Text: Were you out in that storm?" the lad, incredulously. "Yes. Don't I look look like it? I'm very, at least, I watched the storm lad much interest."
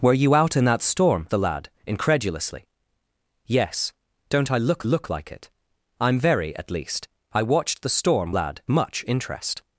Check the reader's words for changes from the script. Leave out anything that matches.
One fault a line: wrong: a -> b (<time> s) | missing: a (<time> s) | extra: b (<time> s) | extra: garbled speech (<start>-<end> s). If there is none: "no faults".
no faults